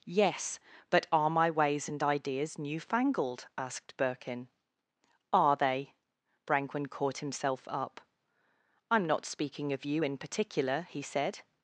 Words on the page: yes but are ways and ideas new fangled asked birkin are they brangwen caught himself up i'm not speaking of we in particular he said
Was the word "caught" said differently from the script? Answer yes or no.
no